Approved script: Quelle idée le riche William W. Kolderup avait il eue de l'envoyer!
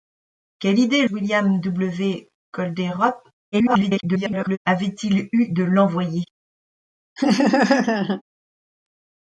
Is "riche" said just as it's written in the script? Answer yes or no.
no